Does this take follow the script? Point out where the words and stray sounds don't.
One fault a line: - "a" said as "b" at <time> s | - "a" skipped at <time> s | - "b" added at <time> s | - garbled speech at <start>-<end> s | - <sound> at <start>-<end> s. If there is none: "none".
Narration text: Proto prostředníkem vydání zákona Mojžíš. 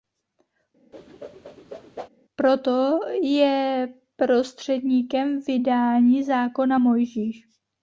- whoosh at 0.9-2.1 s
- "je" added at 3.2 s